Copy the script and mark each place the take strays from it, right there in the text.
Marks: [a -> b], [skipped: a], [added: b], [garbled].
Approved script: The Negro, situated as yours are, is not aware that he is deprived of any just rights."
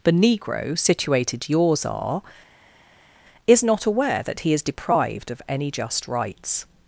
The Negro, situated [skipped: as] yours are, is not aware that he is deprived of any just rights."